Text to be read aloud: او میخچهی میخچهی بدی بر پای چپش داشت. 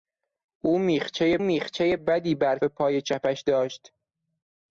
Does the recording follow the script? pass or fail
pass